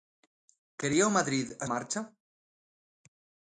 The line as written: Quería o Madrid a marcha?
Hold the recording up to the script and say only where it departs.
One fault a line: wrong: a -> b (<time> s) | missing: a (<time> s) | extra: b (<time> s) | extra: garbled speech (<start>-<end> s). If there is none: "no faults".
no faults